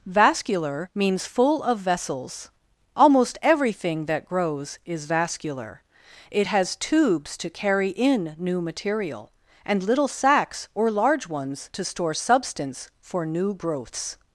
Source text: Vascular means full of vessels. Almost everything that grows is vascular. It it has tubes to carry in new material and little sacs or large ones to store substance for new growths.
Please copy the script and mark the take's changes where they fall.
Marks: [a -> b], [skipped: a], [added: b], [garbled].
Vascular means full of vessels. Almost everything that grows is vascular. It [skipped: it] has tubes to carry in new material and little sacs or large ones to store substance for new growths.